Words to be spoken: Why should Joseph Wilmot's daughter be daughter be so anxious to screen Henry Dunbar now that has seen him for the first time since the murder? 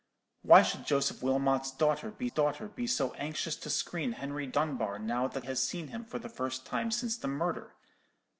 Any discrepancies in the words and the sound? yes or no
no